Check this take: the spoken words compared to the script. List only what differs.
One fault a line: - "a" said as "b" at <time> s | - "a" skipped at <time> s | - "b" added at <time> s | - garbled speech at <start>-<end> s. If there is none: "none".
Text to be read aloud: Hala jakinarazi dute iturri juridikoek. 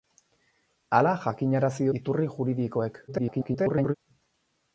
- "dute" skipped at 1.9 s
- garbled speech at 3.1-3.9 s